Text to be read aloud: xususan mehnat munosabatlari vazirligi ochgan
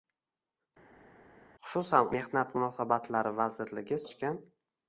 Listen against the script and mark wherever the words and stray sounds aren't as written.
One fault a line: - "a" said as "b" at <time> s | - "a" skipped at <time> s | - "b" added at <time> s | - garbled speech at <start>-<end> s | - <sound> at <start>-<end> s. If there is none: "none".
none